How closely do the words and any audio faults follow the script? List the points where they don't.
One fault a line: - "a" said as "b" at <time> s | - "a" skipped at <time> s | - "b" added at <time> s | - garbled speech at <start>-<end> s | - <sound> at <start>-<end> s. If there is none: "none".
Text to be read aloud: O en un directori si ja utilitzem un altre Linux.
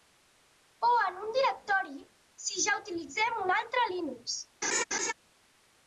- laugh at 4.6-5.1 s